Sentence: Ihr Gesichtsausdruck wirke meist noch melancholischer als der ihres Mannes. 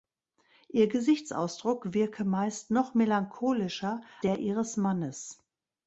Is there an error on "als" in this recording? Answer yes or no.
yes